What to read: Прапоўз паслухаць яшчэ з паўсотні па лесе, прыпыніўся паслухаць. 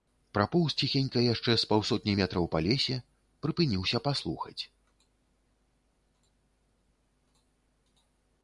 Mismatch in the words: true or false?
true